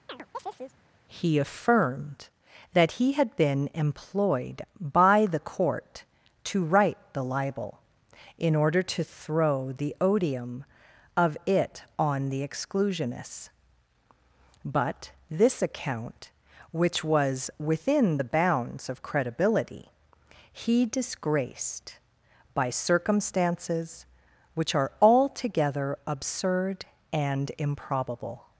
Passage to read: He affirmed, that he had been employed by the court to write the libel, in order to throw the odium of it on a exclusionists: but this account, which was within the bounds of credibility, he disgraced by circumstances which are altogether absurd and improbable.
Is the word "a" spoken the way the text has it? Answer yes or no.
no